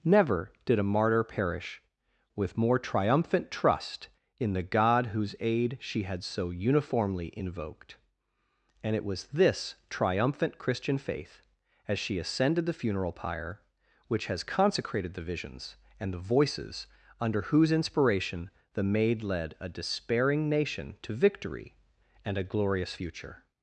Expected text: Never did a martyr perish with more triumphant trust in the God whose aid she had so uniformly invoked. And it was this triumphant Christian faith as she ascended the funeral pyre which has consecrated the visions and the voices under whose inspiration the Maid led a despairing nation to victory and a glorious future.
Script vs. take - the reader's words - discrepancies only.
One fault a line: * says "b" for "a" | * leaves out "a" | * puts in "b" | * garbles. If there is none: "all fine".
all fine